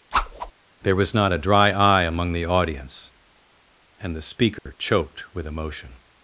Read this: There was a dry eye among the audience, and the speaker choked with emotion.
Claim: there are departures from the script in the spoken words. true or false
true